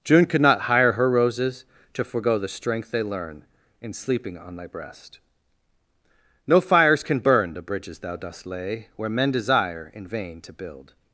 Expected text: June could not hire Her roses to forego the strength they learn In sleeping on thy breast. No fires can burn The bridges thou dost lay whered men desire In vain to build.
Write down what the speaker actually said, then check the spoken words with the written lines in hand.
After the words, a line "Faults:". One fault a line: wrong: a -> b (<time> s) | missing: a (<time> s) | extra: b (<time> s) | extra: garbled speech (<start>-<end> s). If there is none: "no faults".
June could not hire Her roses to forego the strength they learn In sleeping on thy breast. No fires can burn The bridges thou dost lay where men desire In vain to build.
Faults:
wrong: whered -> where (8.9 s)